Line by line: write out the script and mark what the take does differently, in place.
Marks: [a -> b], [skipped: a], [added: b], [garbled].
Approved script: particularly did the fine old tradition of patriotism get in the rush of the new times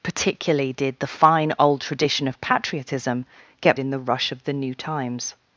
particularly did the fine old tradition of patriotism get in the rush of the new times